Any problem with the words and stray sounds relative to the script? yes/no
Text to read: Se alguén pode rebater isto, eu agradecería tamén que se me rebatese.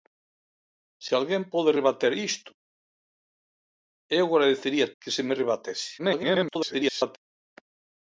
yes